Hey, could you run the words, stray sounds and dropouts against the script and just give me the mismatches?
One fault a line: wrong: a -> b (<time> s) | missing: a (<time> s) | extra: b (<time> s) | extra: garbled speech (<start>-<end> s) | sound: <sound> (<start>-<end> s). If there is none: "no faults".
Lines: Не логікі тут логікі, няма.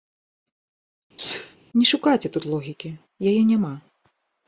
sound: sneeze (1.2-1.6 s)
wrong: логікі -> шукайце (1.9 s)
extra: яе (3.3 s)